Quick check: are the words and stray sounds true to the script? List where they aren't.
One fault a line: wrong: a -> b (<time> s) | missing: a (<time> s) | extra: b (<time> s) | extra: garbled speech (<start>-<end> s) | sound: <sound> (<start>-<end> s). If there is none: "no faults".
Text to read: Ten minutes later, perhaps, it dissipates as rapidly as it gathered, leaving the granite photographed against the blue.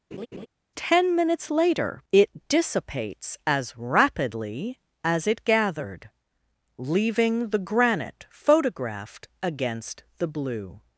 sound: laugh (0.1-0.5 s)
missing: perhaps (2.0 s)